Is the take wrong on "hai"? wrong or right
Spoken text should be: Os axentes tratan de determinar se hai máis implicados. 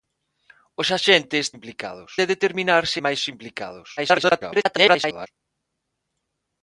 wrong